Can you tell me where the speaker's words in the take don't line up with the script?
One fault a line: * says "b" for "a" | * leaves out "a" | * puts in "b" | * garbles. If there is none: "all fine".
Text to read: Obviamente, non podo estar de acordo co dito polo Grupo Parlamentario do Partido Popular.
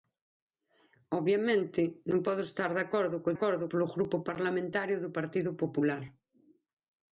* says "acordo" for "dito"